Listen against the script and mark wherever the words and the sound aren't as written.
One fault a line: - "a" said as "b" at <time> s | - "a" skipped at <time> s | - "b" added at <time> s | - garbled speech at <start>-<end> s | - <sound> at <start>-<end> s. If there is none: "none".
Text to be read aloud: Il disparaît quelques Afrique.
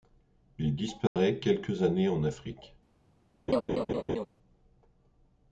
- dropout at 1.1-1.2 s
- "années en" added at 1.8 s
- laugh at 3.5-4.3 s